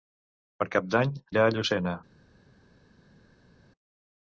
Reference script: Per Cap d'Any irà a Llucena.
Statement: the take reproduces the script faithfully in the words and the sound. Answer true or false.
true